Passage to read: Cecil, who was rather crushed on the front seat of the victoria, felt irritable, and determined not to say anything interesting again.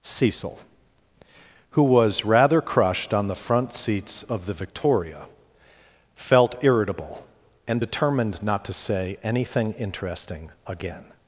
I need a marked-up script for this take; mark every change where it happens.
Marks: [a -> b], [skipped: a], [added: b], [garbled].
Cecil, who was rather crushed on the front [seat -> seats] of the victoria, felt irritable, and determined not to say anything interesting again.